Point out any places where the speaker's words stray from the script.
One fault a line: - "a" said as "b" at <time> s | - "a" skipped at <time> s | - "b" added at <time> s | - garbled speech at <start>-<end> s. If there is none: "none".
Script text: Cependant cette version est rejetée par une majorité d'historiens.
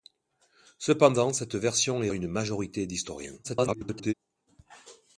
- "rejetée par" skipped at 2.1 s
- garbled speech at 3.4-4.1 s